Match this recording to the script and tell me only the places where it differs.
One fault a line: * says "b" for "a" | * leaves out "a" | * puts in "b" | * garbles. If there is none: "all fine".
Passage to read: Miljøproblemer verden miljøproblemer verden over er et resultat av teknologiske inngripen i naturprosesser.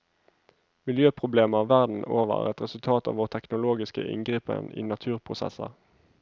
* leaves out "miljøproblemer verden"
* puts in "vår"